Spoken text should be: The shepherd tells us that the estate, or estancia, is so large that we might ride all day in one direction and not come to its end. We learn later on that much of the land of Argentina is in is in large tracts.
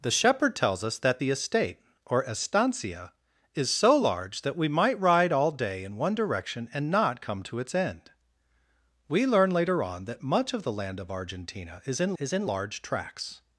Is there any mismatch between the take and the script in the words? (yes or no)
no